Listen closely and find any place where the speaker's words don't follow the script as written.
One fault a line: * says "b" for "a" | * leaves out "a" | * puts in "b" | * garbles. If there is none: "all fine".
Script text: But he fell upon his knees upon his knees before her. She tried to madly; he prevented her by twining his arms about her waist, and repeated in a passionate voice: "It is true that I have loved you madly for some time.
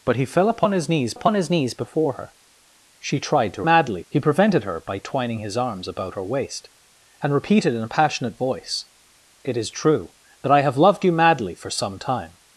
all fine